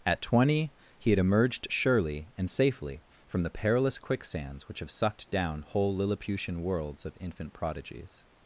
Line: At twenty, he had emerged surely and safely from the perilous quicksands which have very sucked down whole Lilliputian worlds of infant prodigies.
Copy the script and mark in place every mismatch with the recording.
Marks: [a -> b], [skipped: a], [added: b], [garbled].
At twenty, he had emerged surely and safely from the perilous quicksands which have [skipped: very] sucked down whole Lilliputian worlds of infant prodigies.